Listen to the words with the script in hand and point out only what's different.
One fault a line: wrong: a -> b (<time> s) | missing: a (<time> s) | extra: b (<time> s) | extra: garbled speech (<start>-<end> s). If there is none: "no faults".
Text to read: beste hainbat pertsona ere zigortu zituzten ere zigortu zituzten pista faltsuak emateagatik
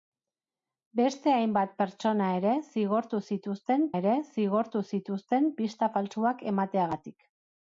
no faults